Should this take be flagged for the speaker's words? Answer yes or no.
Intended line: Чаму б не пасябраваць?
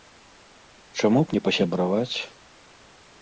no